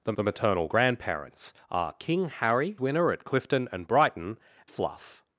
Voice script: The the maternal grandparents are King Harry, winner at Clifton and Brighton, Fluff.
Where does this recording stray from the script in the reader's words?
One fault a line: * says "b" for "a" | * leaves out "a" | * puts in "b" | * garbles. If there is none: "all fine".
all fine